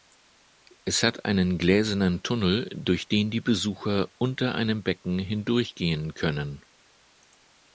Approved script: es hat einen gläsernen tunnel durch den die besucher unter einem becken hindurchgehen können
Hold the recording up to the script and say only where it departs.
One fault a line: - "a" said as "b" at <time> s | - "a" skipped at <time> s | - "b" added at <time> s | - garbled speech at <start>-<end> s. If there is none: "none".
none